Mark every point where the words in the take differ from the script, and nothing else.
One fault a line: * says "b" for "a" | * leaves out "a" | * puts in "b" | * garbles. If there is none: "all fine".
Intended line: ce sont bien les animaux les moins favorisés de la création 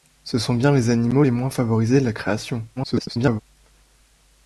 * garbles